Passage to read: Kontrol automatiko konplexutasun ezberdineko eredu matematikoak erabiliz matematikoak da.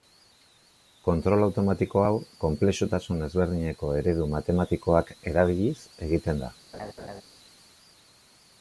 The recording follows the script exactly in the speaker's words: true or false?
false